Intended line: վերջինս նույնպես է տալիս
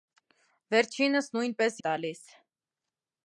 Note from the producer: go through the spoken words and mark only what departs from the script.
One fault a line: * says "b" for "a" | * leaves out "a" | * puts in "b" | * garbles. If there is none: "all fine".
all fine